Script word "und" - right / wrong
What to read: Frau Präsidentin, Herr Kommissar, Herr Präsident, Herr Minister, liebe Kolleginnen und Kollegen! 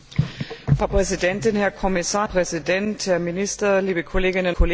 wrong